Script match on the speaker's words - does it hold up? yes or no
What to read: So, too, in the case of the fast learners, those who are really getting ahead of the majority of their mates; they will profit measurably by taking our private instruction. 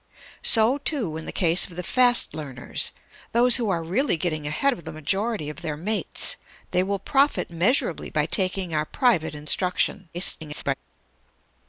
no